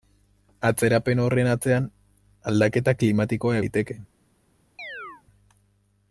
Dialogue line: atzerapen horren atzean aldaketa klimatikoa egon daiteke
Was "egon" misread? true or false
true